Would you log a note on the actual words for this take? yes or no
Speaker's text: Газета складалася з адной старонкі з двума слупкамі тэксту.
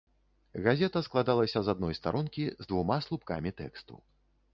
no